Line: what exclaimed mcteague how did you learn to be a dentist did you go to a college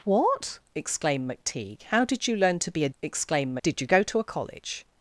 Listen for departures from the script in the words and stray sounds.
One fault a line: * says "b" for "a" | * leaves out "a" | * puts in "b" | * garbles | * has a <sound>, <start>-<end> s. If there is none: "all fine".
* says "exclaimed" for "dentist"